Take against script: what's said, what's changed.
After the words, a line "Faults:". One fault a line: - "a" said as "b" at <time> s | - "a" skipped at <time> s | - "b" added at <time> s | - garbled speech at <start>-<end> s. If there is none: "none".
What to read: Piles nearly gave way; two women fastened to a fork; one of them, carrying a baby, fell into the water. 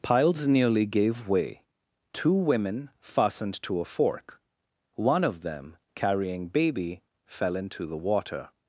Piles nearly gave way; two women fastened to a fork; one of them, carrying baby, fell into the water.
Faults:
- "a" skipped at 6.5 s